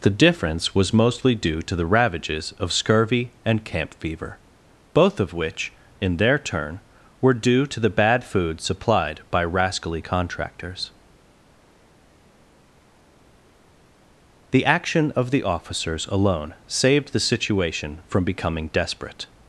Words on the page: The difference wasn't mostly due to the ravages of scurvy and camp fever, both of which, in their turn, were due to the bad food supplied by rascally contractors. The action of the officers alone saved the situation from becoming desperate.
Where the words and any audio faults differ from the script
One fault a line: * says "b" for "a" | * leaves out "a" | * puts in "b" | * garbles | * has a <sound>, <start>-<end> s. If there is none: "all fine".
* says "was" for "wasn't"